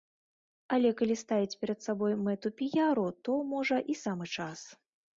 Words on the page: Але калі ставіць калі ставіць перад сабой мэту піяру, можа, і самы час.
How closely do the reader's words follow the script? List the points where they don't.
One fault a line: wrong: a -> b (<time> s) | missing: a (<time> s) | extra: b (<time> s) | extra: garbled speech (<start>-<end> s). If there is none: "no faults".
missing: калі ставіць (1.6 s)
extra: то (3.2 s)